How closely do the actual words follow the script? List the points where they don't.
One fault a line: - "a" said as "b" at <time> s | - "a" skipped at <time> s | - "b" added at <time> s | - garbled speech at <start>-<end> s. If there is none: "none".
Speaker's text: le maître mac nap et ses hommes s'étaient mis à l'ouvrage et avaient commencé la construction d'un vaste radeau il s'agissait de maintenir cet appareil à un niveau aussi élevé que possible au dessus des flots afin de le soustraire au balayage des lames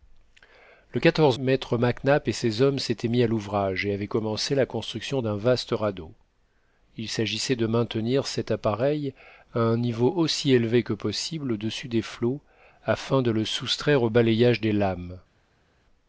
none